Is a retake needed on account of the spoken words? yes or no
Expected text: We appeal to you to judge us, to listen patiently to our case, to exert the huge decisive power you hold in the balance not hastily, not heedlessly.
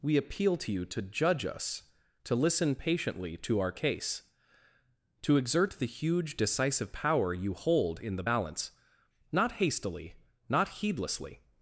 no